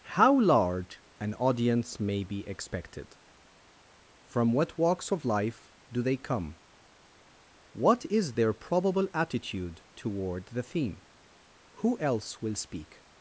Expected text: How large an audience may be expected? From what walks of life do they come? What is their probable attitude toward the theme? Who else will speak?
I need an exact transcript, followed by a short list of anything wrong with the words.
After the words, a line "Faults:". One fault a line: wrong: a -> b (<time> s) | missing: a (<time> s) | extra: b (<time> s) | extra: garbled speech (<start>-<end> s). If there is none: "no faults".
How large an audience may be expected? From what walks of life do they come? What is their probable attitude toward the theme? Who else will speak?
Faults:
no faults